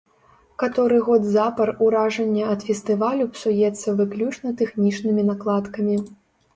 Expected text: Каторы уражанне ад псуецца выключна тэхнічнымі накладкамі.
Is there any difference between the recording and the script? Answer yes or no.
yes